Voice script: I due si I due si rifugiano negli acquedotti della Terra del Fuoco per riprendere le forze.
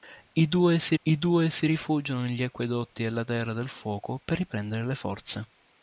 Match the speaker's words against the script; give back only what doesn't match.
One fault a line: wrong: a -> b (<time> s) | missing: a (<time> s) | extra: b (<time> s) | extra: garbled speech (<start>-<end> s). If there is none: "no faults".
no faults